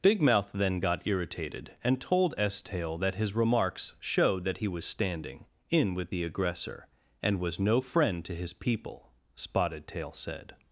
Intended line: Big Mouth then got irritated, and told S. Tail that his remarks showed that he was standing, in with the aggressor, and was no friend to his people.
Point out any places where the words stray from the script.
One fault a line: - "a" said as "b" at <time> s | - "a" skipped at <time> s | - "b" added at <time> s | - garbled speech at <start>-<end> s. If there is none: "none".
- "Spotted Tail said" added at 9.3 s